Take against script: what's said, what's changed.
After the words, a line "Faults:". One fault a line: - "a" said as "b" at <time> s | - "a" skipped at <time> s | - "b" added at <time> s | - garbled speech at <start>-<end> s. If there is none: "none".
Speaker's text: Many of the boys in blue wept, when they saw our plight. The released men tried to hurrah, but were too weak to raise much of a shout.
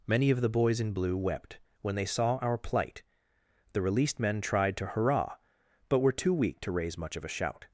Many of the boys in blue wept, when they saw our plight. The released men tried to hurrah, but were too weak to raise much of a shout.
Faults:
none